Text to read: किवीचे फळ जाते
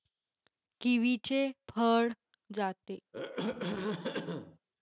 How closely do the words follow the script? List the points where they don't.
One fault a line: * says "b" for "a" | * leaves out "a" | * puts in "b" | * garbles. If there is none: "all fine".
all fine